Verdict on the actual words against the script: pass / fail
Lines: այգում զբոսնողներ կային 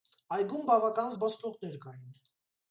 fail